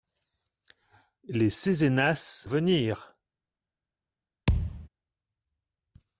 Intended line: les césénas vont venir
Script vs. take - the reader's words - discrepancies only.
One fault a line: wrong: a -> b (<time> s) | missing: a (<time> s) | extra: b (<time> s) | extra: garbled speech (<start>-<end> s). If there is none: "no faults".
missing: vont (2.5 s)